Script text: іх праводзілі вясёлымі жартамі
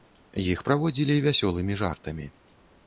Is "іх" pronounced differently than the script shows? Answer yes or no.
no